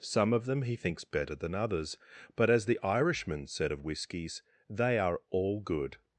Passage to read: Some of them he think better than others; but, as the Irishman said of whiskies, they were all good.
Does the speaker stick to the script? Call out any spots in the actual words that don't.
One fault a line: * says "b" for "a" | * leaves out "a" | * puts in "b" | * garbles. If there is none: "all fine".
* says "thinks" for "think"
* says "are" for "were"